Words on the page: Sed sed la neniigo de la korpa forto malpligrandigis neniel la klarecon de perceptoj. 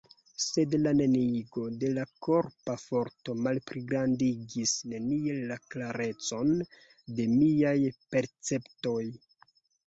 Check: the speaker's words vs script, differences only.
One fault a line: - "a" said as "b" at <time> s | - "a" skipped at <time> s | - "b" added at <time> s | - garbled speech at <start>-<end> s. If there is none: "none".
- "sed" skipped at 0.8 s
- "miaj" added at 7.4 s